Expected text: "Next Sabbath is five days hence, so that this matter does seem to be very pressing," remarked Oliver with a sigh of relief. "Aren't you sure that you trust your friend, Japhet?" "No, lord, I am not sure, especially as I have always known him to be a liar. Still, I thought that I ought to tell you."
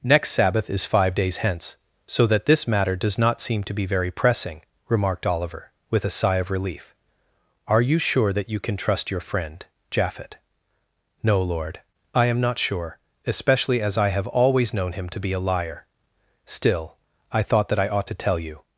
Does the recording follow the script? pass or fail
fail